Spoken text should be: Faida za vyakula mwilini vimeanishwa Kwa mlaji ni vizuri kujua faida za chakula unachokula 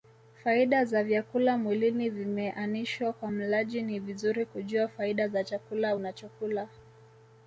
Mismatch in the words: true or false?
false